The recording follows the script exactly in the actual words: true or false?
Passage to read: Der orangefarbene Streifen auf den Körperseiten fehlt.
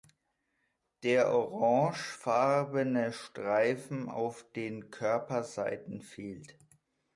true